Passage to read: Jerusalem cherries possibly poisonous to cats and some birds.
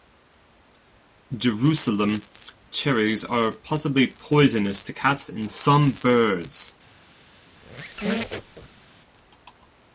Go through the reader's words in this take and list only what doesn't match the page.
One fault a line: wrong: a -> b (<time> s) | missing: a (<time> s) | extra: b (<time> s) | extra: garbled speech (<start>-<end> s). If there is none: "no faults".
extra: are (3.2 s)